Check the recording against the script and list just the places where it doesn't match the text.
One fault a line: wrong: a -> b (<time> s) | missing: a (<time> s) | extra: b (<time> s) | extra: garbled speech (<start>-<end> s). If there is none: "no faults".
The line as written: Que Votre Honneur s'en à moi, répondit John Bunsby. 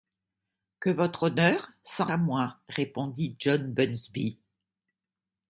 no faults